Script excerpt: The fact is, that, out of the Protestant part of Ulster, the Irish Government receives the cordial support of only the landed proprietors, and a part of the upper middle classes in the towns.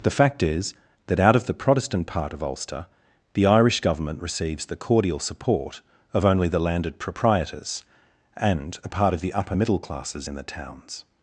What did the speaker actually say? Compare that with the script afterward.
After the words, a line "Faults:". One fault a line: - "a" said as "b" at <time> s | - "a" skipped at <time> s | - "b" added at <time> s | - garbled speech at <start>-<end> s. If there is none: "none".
The fact is, that, out of the Protestant part of Ulster, the Irish Government receives the cordial support of only the landed proprietors, and a part of the upper middle classes in the towns.
Faults:
none